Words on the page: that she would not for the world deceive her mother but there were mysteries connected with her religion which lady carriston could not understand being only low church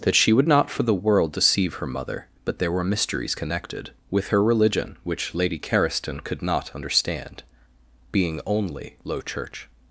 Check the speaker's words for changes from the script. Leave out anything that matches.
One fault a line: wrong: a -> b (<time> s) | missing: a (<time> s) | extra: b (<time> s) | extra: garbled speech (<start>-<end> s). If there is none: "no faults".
no faults